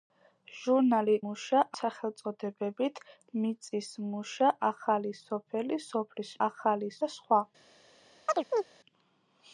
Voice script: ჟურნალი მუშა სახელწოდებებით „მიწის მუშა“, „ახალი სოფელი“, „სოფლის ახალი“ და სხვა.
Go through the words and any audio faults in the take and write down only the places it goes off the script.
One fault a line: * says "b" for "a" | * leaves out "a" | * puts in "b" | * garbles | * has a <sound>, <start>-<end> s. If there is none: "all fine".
* has a chirp, 8.3-8.7 s